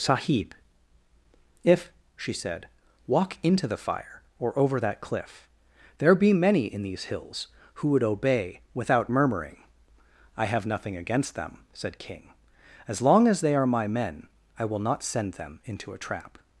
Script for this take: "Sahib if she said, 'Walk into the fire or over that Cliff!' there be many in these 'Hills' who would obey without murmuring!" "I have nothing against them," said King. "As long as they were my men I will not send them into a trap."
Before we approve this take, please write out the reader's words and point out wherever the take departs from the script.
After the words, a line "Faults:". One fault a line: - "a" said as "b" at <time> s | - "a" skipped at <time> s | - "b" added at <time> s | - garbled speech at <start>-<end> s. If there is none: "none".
"Sahib if she said, 'Walk into the fire or over that Cliff!' there be many in these 'Hills' who would obey without murmuring!" "I have nothing against them," said King. "As long as they are my men I will not send them into a trap."
Faults:
- "were" said as "are" at 13.5 s